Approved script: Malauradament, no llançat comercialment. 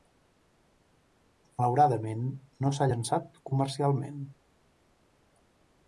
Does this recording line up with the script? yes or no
no